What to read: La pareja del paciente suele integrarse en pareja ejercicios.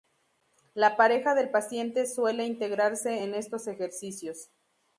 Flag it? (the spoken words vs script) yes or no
yes